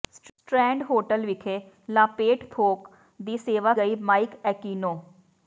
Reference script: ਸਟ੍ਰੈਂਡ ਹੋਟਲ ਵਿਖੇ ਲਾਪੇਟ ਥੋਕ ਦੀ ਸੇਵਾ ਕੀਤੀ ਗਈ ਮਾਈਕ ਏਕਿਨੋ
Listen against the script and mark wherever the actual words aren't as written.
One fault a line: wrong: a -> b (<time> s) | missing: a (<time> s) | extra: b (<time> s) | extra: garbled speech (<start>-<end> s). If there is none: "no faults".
missing: ਕੀਤੀ (3.7 s)